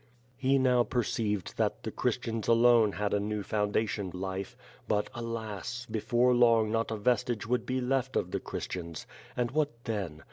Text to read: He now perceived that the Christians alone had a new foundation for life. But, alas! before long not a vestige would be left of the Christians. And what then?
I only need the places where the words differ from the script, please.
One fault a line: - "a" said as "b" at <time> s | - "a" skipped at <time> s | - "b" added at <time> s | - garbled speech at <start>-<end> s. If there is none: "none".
- "for" skipped at 4.1 s